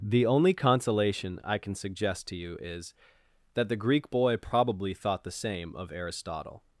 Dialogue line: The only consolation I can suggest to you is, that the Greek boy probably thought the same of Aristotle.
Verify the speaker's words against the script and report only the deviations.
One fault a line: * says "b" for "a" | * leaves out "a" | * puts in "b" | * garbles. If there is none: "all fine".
all fine